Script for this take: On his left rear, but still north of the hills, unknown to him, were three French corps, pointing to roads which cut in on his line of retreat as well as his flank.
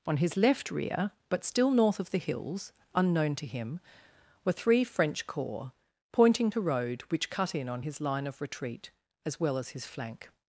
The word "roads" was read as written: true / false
false